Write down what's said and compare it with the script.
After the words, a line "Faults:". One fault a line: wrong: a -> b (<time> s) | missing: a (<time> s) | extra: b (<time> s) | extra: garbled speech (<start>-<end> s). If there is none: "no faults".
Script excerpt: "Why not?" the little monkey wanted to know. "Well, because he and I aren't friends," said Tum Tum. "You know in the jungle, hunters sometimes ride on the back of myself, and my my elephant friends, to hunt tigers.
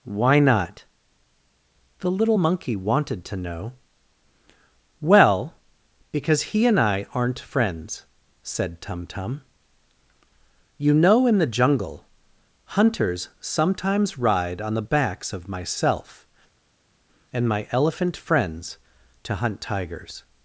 "Why not?" the little monkey wanted to know. "Well, because he and I aren't friends," said Tum Tum. "You know in the jungle, hunters sometimes ride on the backs of myself, and my elephant friends, to hunt tigers.
Faults:
wrong: back -> backs (14.8 s)
missing: my (17.7 s)